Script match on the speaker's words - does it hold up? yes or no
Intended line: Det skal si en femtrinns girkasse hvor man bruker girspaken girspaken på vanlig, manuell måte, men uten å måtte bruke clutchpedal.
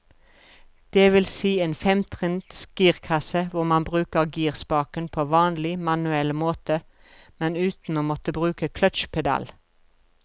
no